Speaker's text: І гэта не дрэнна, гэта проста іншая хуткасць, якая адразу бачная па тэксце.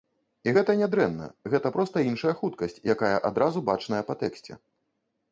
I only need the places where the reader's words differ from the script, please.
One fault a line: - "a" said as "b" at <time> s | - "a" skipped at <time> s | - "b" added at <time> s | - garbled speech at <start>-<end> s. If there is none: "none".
none